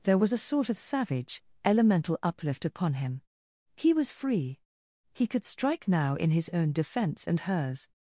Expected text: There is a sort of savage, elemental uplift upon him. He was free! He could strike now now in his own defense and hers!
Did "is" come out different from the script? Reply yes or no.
yes